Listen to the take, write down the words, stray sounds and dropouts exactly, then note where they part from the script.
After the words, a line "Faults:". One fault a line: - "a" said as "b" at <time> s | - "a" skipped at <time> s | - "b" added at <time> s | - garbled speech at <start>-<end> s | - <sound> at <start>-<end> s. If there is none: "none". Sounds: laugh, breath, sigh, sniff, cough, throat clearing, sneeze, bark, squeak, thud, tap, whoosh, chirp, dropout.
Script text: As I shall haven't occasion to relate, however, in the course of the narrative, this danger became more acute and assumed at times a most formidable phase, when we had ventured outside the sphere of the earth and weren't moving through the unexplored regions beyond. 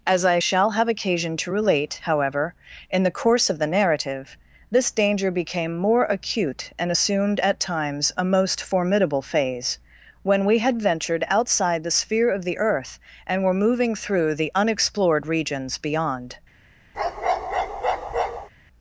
As I shall have occasion to relate, however, in the course of the narrative, this danger became more acute and assumed at times a most formidable phase, when we had ventured outside the sphere of the earth and were moving through the unexplored regions beyond.
Faults:
- "haven't" said as "have" at 0.7 s
- "weren't" said as "were" at 13.4 s
- bark at 16.9-18.5 s